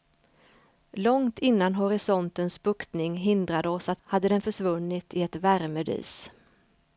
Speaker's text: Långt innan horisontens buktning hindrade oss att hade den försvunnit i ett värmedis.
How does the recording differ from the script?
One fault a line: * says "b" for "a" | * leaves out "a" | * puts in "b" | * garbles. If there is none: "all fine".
all fine